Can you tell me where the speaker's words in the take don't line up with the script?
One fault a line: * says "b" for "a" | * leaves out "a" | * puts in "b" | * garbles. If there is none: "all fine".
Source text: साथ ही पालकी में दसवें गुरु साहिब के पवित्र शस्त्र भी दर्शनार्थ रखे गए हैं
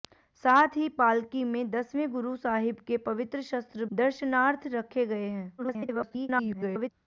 * leaves out "भी"
* garbles